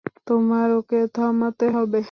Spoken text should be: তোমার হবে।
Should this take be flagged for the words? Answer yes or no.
yes